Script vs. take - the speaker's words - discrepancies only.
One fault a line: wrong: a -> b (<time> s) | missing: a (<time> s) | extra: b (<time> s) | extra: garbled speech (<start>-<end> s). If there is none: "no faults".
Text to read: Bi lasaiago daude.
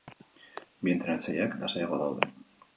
extra: entrenatzaileak (0.9 s)